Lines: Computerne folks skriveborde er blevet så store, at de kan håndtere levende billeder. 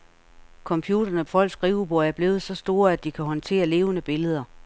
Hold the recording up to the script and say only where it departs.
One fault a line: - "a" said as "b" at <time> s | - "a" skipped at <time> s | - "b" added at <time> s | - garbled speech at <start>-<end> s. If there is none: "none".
none